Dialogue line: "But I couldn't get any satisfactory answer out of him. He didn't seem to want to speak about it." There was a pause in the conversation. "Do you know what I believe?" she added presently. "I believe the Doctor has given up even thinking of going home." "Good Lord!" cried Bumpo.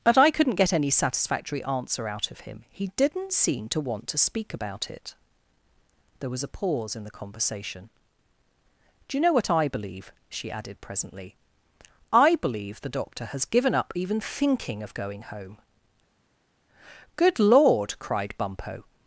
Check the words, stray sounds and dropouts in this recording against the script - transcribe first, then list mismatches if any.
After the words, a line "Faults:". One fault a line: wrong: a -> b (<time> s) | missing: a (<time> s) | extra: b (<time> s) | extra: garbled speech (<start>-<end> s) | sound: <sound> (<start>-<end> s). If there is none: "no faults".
"But I couldn't get any satisfactory answer out of him. He didn't seem to want to speak about it." There was a pause in the conversation. "Do you know what I believe?" she added presently. "I believe the Doctor has given up even thinking of going home." "Good Lord!" cried Bumpo.
Faults:
no faults